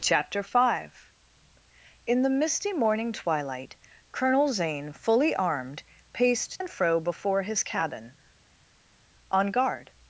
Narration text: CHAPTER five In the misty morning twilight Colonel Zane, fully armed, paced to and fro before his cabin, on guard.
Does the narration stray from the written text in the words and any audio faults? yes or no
yes